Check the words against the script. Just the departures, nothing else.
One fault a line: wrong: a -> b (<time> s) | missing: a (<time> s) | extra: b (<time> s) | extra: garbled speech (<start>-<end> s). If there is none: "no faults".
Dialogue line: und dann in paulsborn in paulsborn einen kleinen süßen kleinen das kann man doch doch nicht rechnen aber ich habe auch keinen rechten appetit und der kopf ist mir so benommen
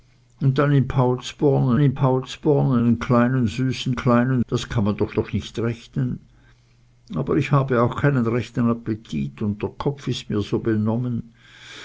no faults